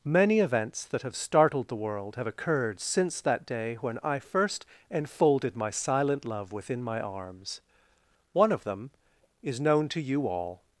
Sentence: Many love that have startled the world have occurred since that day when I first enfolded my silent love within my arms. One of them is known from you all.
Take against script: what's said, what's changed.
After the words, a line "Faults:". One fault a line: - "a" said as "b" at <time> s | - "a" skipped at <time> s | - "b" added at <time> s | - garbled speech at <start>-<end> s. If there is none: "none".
Many events that have startled the world have occurred since that day when I first enfolded my silent love within my arms. One of them is known to you all.
Faults:
- "love" said as "events" at 0.4 s
- "from" said as "to" at 9.9 s